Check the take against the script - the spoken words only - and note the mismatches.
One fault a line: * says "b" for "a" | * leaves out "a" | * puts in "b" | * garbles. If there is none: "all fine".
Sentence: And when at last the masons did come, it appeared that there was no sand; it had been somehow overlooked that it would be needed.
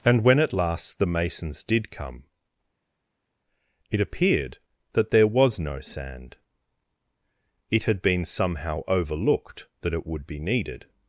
all fine